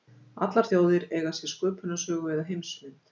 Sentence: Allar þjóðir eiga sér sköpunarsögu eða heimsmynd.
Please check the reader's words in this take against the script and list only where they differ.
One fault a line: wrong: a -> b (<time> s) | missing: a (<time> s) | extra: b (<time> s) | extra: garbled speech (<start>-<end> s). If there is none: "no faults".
no faults